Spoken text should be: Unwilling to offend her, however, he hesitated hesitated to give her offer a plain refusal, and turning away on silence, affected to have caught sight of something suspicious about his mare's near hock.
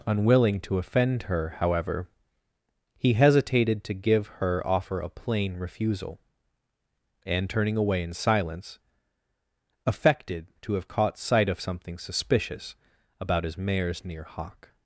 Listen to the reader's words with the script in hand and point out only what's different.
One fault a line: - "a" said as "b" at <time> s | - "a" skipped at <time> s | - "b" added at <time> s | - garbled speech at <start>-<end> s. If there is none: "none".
- "hesitated" skipped at 3.8 s
- "on" said as "in" at 8.0 s